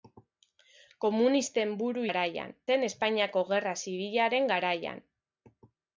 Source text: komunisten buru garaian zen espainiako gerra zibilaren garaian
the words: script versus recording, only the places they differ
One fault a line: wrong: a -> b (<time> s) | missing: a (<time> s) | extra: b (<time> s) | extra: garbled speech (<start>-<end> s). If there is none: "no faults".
no faults